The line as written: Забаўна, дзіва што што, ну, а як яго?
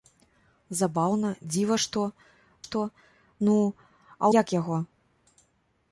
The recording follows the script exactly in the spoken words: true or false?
true